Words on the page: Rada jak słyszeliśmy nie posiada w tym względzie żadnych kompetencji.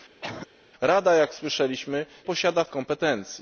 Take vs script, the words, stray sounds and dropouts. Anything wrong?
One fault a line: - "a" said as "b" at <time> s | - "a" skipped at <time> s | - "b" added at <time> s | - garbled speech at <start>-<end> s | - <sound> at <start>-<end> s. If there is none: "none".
- cough at 0.2-0.5 s
- "nie" skipped at 2.1 s
- "tym względzie żadnych" skipped at 2.7 s